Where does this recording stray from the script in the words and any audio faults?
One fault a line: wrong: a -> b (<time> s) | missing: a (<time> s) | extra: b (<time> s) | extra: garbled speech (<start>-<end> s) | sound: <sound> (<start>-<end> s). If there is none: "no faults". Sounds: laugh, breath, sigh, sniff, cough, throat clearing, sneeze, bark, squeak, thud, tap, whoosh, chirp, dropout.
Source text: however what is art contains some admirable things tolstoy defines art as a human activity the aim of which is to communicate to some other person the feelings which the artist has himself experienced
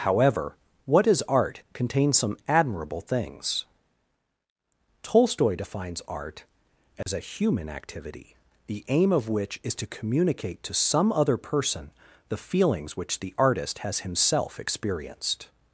sound: dropout (7.0-7.1 s)